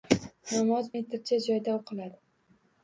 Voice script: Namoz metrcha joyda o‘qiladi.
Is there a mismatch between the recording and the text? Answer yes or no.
no